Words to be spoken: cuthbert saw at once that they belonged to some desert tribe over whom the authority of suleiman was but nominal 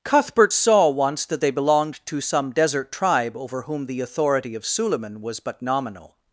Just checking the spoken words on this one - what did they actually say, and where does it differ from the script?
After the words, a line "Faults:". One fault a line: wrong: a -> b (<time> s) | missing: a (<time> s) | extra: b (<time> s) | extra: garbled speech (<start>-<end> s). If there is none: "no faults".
cuthbert saw once that they belonged to some desert tribe over whom the authority of suleiman was but nominal
Faults:
missing: at (0.9 s)